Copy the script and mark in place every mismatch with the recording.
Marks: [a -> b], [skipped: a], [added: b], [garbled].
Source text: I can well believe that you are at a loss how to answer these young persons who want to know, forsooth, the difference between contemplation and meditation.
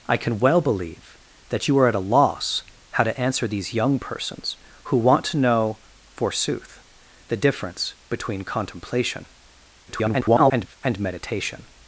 I can well believe that you are at a loss how to answer these young persons who want to know, forsooth, the difference between contemplation [garbled] and meditation.